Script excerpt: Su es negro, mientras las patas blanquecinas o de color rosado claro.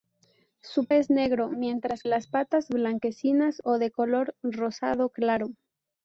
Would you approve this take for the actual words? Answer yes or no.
yes